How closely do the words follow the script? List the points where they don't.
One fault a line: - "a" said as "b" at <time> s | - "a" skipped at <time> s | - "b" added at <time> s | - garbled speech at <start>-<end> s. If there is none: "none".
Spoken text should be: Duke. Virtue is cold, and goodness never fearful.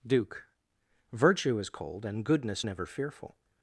none